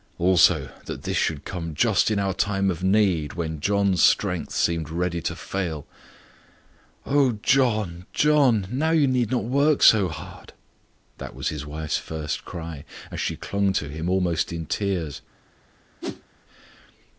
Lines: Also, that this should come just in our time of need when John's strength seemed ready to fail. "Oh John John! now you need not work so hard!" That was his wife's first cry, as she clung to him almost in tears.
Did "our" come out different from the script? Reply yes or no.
no